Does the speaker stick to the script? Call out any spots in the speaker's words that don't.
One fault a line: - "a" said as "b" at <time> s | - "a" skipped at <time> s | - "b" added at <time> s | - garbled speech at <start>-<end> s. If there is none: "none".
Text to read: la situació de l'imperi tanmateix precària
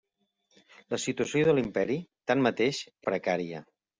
none